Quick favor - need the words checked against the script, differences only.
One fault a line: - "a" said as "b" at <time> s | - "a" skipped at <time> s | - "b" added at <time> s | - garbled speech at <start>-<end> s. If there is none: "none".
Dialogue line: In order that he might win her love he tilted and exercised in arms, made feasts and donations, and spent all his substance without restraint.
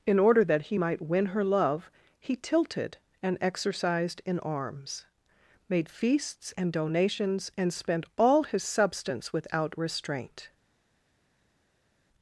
none